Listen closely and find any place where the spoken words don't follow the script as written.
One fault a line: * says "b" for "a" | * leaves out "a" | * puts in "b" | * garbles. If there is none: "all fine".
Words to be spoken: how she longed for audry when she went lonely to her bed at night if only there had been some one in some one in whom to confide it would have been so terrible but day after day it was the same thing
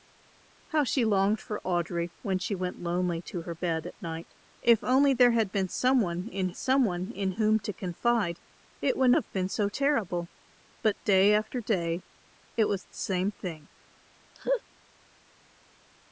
all fine